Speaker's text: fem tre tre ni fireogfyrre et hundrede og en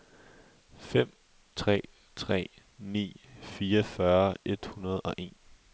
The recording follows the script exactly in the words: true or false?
true